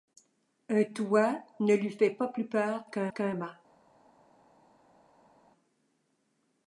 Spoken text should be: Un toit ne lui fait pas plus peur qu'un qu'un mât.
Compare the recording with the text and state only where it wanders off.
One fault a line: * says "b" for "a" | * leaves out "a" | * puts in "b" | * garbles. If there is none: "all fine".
all fine